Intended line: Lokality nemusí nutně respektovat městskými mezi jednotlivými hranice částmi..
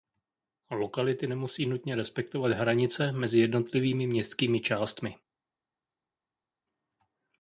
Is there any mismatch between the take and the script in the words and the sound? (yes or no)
yes